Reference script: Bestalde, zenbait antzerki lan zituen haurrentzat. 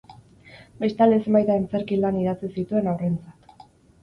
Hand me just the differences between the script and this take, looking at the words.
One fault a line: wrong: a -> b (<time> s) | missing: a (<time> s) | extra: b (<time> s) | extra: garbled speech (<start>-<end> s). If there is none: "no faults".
extra: idatzi (2.2 s)